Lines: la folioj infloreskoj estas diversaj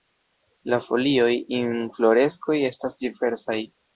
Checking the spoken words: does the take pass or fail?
pass